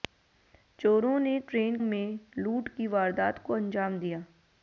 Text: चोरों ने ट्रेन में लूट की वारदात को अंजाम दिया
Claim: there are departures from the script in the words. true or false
false